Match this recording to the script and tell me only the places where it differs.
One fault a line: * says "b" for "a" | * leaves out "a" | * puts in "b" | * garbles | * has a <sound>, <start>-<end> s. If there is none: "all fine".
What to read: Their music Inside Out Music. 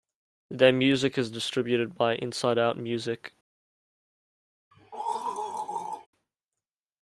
* puts in "is distributed by"
* has a throat clearing, 4.7-6.1 s